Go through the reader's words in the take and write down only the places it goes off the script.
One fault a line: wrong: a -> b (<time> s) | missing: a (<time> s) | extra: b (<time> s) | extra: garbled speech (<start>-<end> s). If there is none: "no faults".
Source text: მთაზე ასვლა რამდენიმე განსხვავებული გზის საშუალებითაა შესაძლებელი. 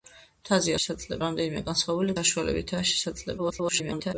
wrong: ასვლა -> შესაძლებელი (0.8 s)
missing: გზის (2.2 s)
extra: garbled speech (3.4-4.1 s)